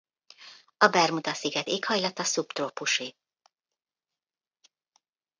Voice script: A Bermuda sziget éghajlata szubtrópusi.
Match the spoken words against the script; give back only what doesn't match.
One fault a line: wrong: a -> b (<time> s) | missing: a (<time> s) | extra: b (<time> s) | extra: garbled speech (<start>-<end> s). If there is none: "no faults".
no faults